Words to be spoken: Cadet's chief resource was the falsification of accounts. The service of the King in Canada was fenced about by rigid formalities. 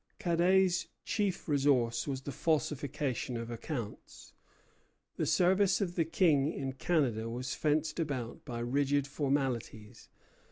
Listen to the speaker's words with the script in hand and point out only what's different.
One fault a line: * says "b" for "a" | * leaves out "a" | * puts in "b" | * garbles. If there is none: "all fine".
all fine